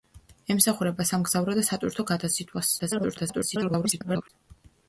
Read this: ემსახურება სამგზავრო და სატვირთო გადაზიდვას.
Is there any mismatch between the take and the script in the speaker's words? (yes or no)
yes